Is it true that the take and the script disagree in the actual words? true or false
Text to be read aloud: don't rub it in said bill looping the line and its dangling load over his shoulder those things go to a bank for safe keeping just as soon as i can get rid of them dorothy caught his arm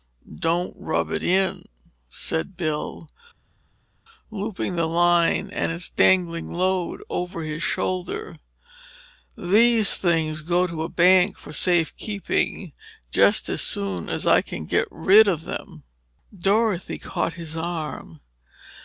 true